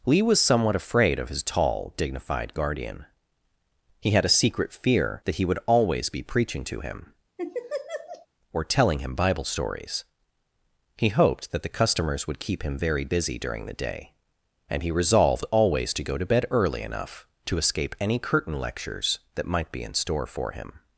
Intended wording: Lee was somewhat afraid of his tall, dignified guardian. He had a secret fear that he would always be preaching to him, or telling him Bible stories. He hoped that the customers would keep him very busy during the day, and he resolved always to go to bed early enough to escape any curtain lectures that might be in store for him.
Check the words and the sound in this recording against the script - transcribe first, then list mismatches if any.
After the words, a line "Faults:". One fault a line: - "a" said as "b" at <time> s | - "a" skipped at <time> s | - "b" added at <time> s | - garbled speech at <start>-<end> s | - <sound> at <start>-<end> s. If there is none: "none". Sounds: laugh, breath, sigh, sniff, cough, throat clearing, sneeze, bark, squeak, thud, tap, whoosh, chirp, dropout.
Lee was somewhat afraid of his tall, dignified guardian. He had a secret fear that he would always be preaching to him, or telling him Bible stories. He hoped that the customers would keep him very busy during the day, and he resolved always to go to bed early enough to escape any curtain lectures that might be in store for him.
Faults:
- laugh at 7.4-8.3 s